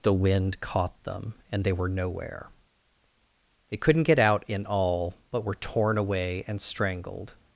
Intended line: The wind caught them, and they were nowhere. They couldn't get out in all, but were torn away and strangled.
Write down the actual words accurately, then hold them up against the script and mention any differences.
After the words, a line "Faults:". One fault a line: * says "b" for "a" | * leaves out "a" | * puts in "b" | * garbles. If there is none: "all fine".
The wind caught them, and they were nowhere. They couldn't get out in all, but were torn away and strangled.
Faults:
all fine